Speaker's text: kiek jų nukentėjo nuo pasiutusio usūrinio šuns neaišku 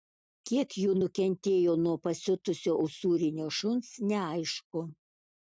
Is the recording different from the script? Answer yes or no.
no